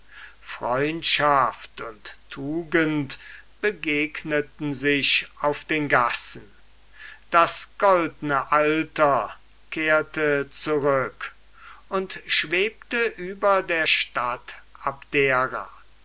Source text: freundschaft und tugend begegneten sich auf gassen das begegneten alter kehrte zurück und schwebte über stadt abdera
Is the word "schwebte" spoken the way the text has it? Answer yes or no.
yes